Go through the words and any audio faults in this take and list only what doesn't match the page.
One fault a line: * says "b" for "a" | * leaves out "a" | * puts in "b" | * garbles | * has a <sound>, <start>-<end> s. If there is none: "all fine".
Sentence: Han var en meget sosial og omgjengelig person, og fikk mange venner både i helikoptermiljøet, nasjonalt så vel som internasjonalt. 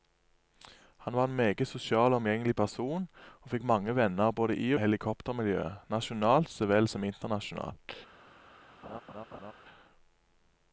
* has a laugh, 8.8-9.5 s